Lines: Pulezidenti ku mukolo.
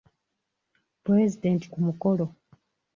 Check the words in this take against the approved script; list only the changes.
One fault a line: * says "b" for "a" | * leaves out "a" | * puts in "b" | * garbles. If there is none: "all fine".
all fine